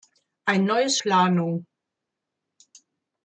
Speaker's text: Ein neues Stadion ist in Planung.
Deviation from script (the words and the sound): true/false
true